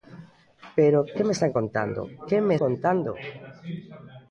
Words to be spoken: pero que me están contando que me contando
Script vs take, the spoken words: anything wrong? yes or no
no